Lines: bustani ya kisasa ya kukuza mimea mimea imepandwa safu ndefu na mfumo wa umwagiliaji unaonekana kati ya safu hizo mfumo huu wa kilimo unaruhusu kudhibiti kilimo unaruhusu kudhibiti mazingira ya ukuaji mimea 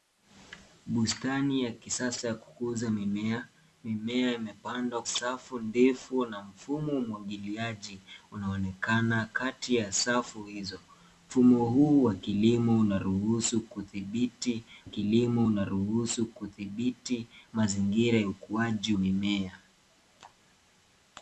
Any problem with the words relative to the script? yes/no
no